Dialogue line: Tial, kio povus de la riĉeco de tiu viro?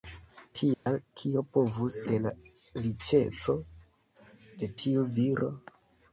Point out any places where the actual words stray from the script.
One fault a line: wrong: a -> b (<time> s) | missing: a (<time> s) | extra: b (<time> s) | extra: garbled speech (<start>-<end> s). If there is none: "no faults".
no faults